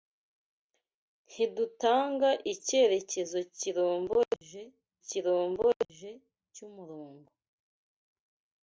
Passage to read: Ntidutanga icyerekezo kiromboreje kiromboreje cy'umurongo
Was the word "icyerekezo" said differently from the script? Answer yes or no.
no